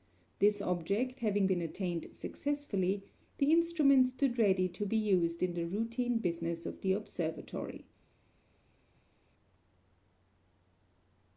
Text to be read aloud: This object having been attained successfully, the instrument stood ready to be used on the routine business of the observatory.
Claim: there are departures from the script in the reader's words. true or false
true